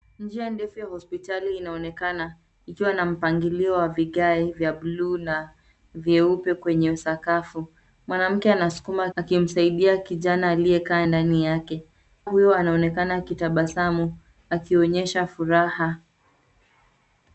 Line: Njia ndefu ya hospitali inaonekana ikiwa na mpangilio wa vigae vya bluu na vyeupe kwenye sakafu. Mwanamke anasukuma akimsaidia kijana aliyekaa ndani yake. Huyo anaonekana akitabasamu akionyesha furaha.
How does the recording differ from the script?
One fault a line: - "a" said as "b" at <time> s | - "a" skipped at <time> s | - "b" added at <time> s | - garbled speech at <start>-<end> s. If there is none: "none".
none